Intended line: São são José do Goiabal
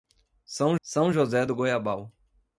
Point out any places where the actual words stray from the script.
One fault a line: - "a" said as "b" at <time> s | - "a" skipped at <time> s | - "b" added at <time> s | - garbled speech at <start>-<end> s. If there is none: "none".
none